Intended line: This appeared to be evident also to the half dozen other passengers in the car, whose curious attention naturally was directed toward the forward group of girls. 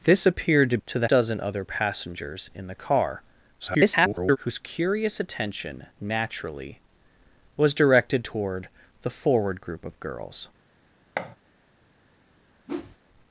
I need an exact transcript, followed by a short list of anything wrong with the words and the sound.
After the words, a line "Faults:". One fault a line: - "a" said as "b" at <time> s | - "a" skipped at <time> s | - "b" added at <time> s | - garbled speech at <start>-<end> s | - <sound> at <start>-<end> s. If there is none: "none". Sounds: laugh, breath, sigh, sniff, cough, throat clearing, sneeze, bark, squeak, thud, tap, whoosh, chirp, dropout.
This appeared to to the dozen other passengers in the car, [garbled] whose curious attention naturally was directed toward the forward group of girls.
Faults:
- "be evident also" skipped at 0.8 s
- "half" skipped at 1.1 s
- garbled speech at 3.6-4.4 s
- thud at 11.2-11.4 s
- whoosh at 12.7-13.0 s